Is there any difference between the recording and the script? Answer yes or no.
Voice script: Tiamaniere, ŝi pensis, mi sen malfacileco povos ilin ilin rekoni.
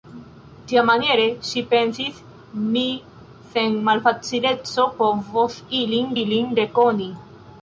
no